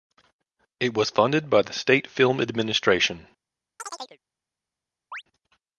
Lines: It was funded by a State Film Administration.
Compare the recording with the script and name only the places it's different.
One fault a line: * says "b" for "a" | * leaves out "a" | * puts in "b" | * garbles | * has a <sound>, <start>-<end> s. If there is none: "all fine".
* says "the" for "a"
* has a chirp, 3.8-4.2 s
* has a chirp, 5.1-5.2 s